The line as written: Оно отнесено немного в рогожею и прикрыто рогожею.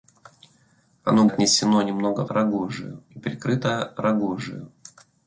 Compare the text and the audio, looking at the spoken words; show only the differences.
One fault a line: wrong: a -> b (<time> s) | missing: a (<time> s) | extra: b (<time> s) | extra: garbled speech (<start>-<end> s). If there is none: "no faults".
no faults